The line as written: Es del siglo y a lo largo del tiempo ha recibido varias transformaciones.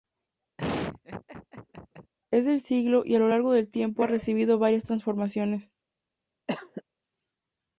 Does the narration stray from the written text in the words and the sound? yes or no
yes